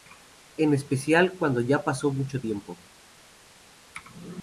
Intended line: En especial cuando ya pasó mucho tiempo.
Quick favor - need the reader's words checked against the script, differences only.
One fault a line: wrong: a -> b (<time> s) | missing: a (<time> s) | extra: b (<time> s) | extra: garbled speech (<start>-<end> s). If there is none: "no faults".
no faults